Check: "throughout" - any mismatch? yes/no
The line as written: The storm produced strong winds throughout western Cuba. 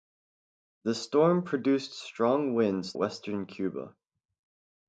yes